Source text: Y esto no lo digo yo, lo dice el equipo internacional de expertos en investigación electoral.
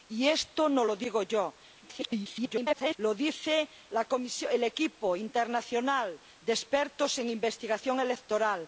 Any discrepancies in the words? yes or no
yes